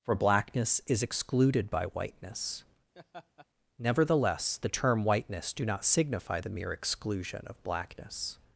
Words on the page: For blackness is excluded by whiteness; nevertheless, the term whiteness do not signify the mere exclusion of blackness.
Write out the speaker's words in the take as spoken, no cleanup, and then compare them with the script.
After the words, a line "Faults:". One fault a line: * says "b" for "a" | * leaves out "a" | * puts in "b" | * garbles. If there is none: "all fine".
For blackness is excluded by whiteness; nevertheless, the term whiteness do not signify the mere exclusion of blackness.
Faults:
all fine